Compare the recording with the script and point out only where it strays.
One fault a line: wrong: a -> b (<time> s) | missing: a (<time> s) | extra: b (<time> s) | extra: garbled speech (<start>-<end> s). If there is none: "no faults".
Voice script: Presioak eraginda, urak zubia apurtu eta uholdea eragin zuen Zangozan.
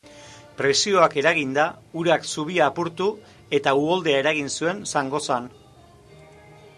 no faults